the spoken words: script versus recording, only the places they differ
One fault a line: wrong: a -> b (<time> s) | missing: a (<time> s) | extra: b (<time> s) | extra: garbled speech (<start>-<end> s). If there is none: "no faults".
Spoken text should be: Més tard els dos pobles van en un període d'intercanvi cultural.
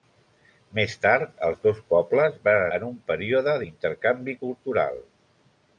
no faults